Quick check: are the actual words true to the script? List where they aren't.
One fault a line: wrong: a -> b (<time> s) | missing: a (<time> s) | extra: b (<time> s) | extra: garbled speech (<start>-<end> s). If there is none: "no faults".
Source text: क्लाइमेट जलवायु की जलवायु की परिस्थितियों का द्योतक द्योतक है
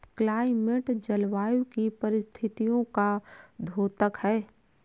missing: जलवायु की (1.9 s)
missing: द्योतक (4.2 s)